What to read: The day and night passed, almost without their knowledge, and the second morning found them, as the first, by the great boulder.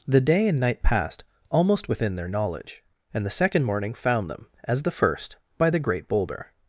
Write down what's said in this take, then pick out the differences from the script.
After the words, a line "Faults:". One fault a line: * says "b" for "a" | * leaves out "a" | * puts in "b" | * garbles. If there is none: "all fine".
The day and night passed, almost within their knowledge, and the second morning found them, as the first, by the great boulder.
Faults:
* says "within" for "without"